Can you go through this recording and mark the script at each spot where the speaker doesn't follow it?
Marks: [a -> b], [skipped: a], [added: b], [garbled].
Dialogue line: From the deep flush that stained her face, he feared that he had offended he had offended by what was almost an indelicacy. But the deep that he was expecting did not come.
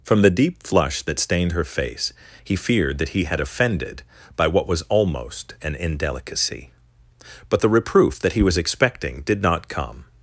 From the deep flush that stained her face, he feared that he had offended [skipped: he had offended] by what was almost an indelicacy. But the [deep -> reproof] that he was expecting did not come.